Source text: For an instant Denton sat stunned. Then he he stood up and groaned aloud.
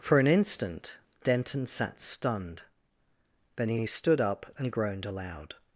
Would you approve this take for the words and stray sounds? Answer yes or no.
yes